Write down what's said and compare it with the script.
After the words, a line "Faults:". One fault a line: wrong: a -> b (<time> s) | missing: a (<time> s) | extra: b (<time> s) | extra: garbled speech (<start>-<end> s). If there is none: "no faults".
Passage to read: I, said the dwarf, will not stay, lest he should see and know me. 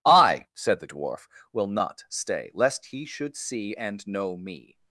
I, said the dwarf, will not stay, lest he should see and know me.
Faults:
no faults